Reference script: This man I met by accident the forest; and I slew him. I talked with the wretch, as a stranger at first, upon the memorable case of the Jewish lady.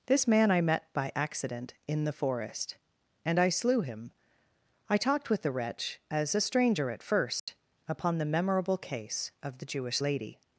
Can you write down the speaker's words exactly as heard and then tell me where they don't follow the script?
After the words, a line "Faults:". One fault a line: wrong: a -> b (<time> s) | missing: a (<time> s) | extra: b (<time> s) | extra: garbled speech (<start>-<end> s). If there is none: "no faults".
This man I met by accident in the forest; and I slew him. I talked with the wretch, as a stranger at first, upon the memorable case of the Jewish lady.
Faults:
extra: in (1.9 s)